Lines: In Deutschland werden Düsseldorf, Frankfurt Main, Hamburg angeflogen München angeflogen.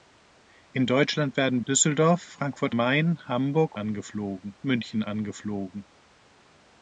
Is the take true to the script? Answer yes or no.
yes